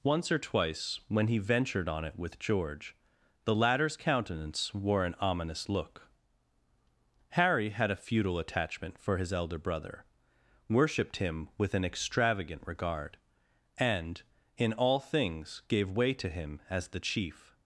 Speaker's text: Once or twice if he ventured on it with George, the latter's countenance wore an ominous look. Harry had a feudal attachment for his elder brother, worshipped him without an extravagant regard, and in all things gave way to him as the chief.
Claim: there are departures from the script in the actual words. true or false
true